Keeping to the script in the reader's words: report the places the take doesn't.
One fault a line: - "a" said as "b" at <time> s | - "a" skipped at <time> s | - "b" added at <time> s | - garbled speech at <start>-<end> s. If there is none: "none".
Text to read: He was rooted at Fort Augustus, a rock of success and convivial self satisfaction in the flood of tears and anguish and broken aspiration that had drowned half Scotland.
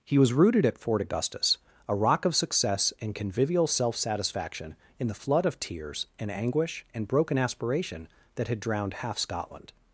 none